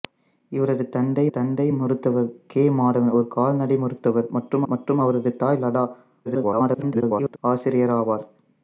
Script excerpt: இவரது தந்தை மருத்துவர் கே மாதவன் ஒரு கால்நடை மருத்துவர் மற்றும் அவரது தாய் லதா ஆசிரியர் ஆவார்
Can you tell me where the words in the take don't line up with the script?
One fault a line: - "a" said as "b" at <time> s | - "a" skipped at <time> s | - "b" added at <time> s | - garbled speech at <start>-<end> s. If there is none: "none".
- "தந்தை" added at 1.3 s
- "மற்றும்" added at 4.7 s
- garbled speech at 6.3-7.4 s